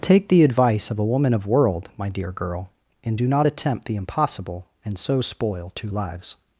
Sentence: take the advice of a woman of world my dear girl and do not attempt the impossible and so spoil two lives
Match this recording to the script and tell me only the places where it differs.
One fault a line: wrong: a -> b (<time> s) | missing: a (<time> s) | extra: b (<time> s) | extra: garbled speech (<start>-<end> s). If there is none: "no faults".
no faults